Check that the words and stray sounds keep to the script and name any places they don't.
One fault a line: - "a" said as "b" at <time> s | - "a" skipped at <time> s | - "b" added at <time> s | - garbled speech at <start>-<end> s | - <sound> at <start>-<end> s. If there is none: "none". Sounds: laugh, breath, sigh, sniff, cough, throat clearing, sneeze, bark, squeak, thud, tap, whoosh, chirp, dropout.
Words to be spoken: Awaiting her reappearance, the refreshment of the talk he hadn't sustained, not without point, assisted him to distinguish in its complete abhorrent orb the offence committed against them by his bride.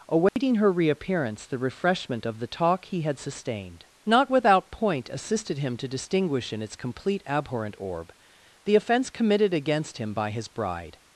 - dropout at 0.3-0.4 s
- "hadn't" said as "had" at 3.0 s
- "them" said as "him" at 10.0 s